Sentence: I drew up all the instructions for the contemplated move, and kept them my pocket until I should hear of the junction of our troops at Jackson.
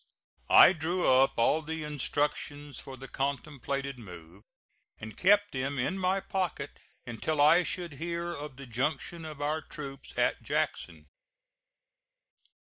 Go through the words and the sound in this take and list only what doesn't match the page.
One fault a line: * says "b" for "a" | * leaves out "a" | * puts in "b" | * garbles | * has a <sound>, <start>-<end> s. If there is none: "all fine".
* puts in "in"